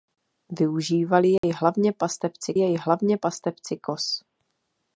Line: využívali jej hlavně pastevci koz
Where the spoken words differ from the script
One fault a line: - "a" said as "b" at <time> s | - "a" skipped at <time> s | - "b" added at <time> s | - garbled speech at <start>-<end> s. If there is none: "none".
- "jej hlavně pastevci" added at 2.5 s